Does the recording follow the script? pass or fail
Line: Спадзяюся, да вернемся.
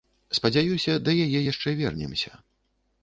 fail